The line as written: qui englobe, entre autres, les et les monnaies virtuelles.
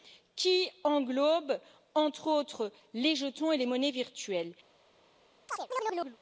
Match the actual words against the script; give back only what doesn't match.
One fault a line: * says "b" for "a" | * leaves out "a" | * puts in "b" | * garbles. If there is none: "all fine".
* puts in "jetons"